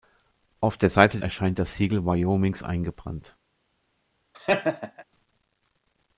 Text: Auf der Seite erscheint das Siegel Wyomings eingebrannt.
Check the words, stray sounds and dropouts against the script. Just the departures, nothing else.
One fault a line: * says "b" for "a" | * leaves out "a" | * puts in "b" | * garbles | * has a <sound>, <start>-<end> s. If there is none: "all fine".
* has a laugh, 4.3-5.0 s